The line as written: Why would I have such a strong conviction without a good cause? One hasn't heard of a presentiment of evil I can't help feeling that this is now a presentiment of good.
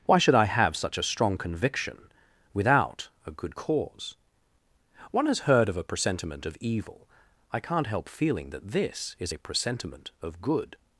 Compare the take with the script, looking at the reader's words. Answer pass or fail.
fail